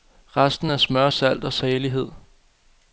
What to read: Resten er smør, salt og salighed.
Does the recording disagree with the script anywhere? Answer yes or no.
no